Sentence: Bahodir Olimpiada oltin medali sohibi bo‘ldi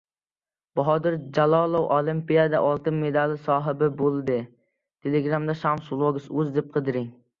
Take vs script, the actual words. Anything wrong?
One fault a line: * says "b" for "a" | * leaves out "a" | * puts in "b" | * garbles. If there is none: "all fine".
* puts in "Jalolov"